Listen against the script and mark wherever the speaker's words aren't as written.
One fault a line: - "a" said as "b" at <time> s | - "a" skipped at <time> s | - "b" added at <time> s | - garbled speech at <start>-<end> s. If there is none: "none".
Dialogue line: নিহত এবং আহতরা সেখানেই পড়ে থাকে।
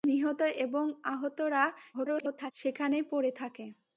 - garbled speech at 1.9-2.5 s